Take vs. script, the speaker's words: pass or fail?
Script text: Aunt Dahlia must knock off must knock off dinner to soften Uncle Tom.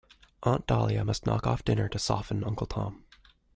fail